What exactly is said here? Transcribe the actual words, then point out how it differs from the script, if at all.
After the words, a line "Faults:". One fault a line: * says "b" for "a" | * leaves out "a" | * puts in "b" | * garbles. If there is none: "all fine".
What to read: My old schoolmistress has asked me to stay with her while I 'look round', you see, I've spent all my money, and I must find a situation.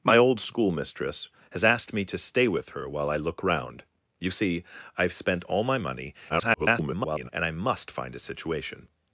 My old schoolmistress has asked me to stay with her while I 'look round', you see, I've spent all my money, [garbled] and I must find a situation.
Faults:
* garbles